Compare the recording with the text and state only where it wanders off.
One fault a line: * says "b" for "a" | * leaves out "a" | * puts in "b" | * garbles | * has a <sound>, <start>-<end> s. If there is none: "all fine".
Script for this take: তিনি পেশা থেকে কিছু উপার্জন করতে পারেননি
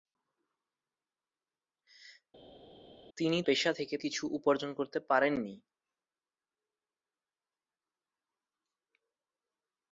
all fine